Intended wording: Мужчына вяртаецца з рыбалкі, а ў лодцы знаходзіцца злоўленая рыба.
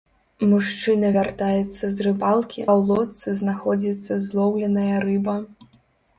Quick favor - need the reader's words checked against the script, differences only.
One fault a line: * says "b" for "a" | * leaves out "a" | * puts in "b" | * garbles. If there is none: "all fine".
* leaves out "а"